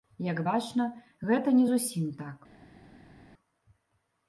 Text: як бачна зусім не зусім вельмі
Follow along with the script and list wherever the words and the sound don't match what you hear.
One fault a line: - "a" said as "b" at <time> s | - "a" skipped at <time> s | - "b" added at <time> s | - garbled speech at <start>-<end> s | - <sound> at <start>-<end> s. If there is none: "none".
- "зусім" said as "гэта" at 1.3 s
- "вельмі" said as "так" at 2.2 s